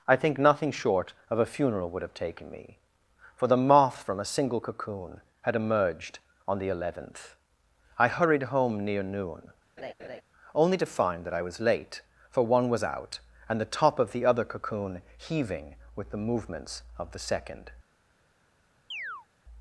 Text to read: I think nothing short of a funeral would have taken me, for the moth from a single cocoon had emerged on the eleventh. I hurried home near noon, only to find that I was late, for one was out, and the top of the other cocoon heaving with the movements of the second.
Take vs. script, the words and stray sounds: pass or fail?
fail